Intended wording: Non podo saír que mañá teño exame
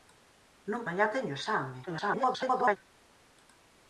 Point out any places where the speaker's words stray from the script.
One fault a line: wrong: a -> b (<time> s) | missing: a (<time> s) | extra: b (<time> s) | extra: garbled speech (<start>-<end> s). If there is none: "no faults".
missing: podo saír que (0.8 s)
extra: garbled speech (1.9-2.8 s)